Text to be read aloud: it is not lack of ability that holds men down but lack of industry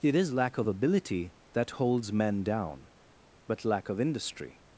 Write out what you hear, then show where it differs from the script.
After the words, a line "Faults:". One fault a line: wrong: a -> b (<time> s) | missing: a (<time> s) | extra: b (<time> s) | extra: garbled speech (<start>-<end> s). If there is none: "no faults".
it is lack of ability that holds men down but lack of industry
Faults:
missing: not (0.3 s)